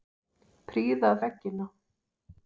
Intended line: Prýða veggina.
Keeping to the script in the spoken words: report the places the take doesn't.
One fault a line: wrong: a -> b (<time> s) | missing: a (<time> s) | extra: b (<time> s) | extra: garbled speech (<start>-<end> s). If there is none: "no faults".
no faults